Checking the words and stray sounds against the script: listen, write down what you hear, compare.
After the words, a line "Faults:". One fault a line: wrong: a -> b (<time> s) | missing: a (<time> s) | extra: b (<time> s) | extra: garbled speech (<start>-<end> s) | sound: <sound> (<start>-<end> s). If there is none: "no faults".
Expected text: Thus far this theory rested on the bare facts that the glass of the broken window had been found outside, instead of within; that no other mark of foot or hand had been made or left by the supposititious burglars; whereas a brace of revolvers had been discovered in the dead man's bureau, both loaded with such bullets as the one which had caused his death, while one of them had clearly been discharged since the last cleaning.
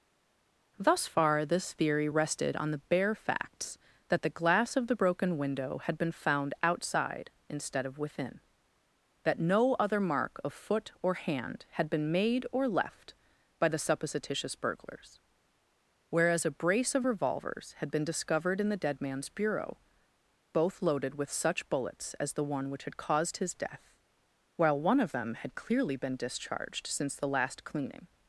Thus far this theory rested on the bare facts that the glass of the broken window had been found outside, instead of within; that no other mark of foot or hand had been made or left by the supposititious burglars; whereas a brace of revolvers had been discovered in the dead man's bureau, both loaded with such bullets as the one which had caused his death, while one of them had clearly been discharged since the last cleaning.
Faults:
no faults